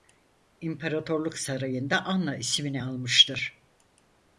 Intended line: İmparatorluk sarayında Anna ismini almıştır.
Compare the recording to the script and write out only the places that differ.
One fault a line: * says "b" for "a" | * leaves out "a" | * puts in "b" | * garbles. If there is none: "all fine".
all fine